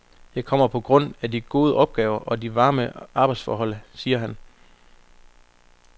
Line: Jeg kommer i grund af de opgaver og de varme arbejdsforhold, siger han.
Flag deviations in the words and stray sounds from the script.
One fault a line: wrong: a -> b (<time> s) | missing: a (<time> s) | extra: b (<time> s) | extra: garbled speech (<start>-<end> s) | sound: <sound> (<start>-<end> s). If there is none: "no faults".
wrong: i -> på (0.7 s)
extra: gode (1.4 s)